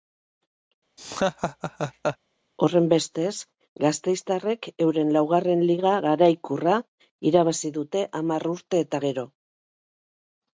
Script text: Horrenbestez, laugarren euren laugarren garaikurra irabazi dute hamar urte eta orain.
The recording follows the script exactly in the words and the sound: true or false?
false